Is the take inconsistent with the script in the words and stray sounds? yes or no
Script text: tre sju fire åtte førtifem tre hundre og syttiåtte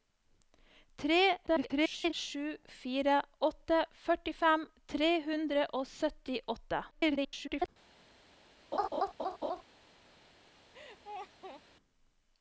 yes